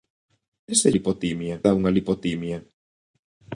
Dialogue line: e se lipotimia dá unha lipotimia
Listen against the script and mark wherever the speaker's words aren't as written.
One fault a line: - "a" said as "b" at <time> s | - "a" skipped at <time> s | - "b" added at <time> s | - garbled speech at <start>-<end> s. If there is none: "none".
none